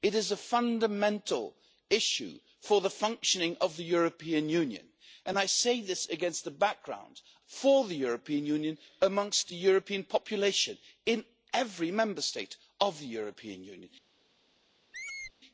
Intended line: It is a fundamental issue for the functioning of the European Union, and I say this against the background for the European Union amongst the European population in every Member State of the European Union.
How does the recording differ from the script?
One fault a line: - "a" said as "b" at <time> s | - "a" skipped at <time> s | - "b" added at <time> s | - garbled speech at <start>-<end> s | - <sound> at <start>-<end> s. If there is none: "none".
- squeak at 14.9-15.3 s